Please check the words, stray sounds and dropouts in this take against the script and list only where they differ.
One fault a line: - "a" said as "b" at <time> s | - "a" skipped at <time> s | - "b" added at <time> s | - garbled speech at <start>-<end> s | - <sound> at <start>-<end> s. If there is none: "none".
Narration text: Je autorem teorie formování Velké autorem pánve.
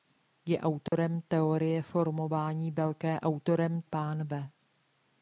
- dropout at 0.9-0.9 s